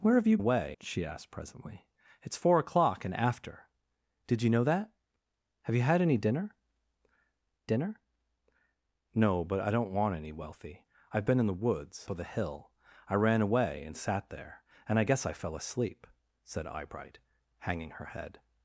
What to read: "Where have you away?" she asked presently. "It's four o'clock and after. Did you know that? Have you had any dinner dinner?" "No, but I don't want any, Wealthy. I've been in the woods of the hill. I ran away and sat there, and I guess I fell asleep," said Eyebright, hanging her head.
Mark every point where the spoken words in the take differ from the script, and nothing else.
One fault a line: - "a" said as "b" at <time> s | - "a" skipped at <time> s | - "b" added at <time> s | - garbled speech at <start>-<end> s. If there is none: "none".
none